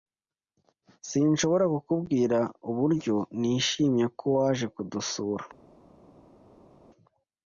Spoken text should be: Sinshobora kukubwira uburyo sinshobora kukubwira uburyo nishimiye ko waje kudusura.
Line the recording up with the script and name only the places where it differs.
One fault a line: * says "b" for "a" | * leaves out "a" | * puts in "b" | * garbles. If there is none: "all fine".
* leaves out "sinshobora kukubwira uburyo"